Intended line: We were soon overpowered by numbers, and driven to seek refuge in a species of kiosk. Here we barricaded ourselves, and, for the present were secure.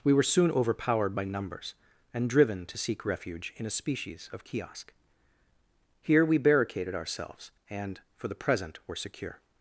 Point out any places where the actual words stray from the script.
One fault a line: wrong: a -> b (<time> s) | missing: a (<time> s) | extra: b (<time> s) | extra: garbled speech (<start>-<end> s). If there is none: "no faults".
no faults